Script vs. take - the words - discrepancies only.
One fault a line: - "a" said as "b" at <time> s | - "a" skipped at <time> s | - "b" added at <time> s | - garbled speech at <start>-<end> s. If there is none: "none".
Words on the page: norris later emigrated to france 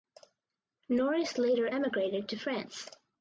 none